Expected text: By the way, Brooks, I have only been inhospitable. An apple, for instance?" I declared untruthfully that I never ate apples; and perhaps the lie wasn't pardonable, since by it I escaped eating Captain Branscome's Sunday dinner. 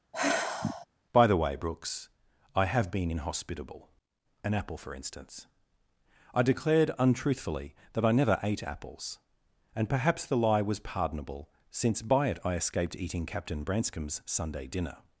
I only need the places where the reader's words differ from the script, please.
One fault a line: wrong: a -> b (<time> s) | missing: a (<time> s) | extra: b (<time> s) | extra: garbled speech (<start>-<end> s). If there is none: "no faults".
missing: only (2.9 s)
wrong: wasn't -> was (10.6 s)